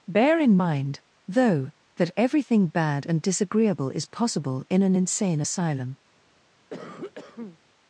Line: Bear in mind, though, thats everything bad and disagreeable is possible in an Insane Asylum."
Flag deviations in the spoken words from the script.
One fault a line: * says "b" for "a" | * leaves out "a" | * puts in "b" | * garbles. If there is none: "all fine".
* says "that" for "thats"